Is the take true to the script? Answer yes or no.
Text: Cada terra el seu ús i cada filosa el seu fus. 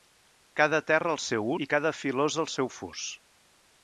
no